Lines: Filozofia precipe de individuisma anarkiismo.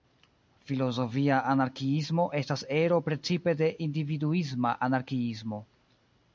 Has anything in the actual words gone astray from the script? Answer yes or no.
yes